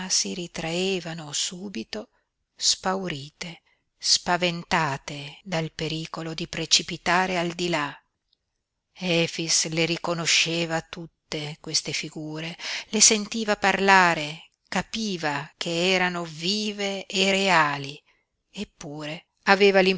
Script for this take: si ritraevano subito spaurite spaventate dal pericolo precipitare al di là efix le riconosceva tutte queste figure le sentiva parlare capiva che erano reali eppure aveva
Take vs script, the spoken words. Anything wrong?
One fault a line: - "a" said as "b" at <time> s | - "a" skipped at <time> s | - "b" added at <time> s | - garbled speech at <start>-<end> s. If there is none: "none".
- "di" added at 6.3 s
- "vive e" added at 16.2 s